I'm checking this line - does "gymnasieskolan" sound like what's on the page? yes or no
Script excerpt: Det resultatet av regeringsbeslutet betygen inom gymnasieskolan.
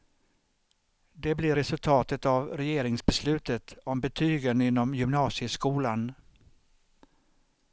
yes